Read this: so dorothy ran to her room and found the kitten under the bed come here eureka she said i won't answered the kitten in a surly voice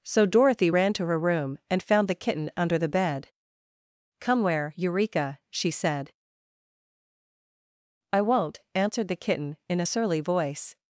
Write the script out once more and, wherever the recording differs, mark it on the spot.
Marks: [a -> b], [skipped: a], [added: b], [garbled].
so dorothy ran to her room and found the kitten under the bed come [here -> where] eureka she said i won't answered the kitten in a surly voice